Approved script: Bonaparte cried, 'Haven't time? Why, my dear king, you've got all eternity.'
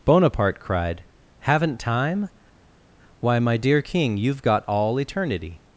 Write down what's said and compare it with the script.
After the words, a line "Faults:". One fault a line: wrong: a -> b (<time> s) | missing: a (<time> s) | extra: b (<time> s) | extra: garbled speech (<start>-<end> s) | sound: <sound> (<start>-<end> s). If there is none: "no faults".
Bonaparte cried, 'Haven't time? Why, my dear king, you've got all eternity.'
Faults:
no faults